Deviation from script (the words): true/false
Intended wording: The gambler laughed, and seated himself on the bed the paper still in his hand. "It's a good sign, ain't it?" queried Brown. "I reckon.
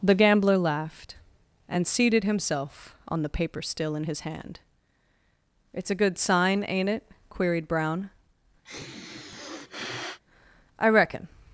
true